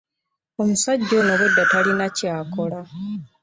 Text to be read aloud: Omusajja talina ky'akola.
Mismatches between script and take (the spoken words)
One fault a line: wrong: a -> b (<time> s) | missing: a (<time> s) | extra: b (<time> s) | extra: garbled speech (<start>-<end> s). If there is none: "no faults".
extra: ono obwedda (1.2 s)